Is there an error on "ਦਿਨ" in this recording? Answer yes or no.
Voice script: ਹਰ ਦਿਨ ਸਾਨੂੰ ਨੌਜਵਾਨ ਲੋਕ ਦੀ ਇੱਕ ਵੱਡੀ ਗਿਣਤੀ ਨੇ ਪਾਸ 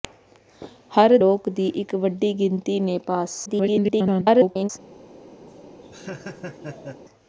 yes